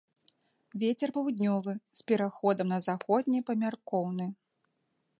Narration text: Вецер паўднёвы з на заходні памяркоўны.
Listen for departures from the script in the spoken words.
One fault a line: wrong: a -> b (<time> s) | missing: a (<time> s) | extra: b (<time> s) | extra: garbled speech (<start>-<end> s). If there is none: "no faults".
extra: пераходам (2.1 s)